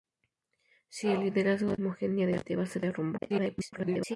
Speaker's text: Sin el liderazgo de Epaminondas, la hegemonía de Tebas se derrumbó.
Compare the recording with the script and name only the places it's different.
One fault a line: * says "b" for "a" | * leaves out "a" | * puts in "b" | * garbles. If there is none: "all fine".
* leaves out "de Epaminondas la"
* garbles